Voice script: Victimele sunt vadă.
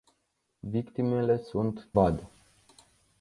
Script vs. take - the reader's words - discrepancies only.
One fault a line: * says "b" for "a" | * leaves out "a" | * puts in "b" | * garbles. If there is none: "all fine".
all fine